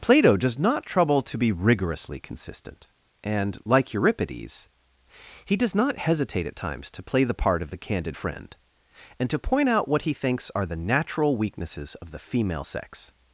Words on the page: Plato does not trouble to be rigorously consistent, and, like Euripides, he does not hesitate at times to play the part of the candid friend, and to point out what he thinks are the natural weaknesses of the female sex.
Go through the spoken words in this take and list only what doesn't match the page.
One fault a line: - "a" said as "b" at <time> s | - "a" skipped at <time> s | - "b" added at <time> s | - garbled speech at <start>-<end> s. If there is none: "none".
none